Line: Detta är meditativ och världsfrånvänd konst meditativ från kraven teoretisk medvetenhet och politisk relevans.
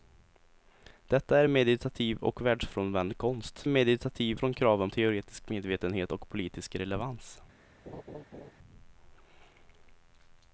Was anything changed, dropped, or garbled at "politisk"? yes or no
no